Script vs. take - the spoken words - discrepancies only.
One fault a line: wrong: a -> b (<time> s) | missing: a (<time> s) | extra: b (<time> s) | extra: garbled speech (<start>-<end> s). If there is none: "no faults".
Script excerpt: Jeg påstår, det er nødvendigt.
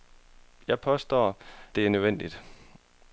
no faults